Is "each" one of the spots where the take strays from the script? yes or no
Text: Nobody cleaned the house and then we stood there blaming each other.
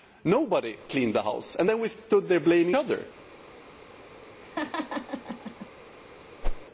yes